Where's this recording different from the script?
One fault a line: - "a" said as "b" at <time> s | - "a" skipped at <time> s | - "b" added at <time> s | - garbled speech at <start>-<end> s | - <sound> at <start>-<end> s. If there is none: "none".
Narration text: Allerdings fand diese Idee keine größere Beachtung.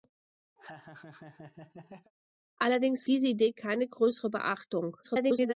- laugh at 0.6-2.1 s
- "fand" skipped at 3.0 s
- garbled speech at 5.0-5.5 s